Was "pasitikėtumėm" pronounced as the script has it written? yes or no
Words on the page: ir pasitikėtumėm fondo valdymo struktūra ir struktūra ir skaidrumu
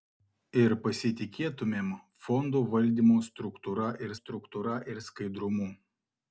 yes